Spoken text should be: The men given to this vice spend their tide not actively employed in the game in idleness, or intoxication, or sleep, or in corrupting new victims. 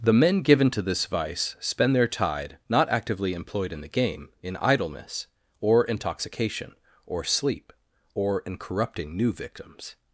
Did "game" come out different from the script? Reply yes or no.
no